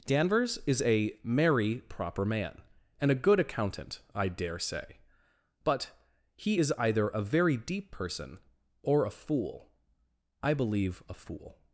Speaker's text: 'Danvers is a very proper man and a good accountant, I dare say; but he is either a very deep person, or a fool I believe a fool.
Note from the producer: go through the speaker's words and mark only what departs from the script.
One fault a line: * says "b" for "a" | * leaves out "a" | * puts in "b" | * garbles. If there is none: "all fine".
* says "merry" for "very"